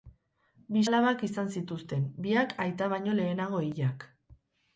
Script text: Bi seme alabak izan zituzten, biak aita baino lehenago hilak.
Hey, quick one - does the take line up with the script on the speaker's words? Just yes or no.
no